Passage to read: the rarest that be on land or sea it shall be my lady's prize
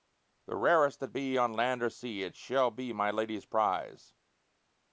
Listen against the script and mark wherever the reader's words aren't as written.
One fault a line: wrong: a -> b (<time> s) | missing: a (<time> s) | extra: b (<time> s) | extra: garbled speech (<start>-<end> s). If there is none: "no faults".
no faults